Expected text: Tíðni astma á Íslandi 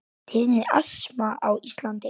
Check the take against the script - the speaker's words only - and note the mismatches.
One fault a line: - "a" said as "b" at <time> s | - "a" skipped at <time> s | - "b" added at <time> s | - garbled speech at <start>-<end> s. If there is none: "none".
none